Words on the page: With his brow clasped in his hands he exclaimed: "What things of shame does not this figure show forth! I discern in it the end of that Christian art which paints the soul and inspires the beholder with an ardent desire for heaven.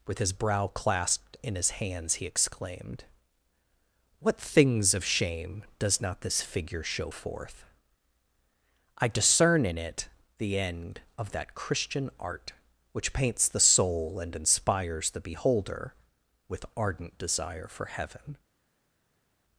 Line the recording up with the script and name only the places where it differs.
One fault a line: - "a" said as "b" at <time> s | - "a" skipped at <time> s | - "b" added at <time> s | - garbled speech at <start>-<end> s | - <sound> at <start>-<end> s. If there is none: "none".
- "an" skipped at 16.6 s